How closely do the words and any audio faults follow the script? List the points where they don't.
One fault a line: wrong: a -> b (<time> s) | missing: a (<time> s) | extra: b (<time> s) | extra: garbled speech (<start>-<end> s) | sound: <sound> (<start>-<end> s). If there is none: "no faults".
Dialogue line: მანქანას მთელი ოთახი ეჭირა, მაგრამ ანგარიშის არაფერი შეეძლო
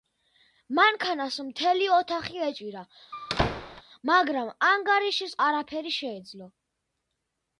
sound: squeak (3.1-3.8 s)